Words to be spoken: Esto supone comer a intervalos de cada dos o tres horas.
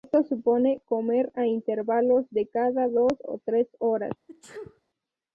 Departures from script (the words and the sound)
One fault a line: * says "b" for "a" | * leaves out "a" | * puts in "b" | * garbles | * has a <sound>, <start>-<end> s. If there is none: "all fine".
* has a sneeze, 4.3-4.8 s